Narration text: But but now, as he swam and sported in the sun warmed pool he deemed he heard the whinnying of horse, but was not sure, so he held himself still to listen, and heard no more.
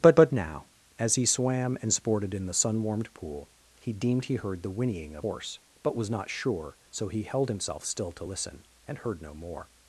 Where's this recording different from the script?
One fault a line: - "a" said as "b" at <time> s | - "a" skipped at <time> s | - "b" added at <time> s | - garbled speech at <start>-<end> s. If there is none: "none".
none